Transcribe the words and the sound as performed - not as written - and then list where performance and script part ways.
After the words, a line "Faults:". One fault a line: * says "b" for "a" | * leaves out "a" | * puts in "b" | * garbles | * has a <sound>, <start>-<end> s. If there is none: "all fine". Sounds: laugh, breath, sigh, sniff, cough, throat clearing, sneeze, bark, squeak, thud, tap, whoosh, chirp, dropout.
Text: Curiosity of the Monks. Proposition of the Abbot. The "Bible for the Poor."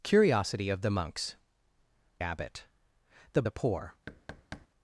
Curiosity of the Monks. Abbot. The "The Poor."
Faults:
* leaves out "Proposition of the"
* leaves out "Bible for"
* has a thud, 4.1-4.7 s